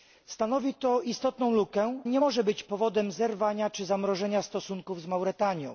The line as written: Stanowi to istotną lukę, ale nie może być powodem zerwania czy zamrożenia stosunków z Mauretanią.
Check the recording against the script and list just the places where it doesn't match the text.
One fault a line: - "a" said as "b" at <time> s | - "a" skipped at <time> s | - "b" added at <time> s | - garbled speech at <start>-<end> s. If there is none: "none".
- "ale" skipped at 2.0 s